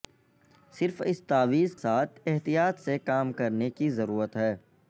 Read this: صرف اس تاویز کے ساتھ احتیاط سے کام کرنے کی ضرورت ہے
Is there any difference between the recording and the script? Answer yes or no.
yes